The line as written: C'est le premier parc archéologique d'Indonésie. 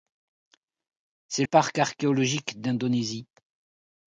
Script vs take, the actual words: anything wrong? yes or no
yes